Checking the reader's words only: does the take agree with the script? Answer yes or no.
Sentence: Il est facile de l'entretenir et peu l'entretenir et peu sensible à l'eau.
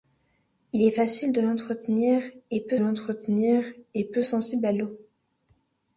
yes